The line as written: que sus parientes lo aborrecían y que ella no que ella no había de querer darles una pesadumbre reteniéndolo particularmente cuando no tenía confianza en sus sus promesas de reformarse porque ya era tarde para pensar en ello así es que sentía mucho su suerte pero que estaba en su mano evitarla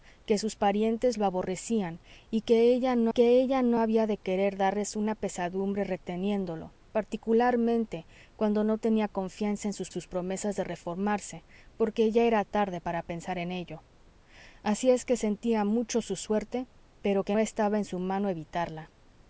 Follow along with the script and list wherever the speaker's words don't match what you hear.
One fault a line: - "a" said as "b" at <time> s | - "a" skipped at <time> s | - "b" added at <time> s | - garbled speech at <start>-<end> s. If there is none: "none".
none